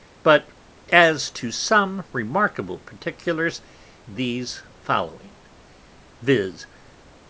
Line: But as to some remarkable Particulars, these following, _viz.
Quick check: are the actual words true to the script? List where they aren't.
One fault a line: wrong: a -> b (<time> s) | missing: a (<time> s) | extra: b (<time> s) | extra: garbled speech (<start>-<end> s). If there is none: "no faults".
no faults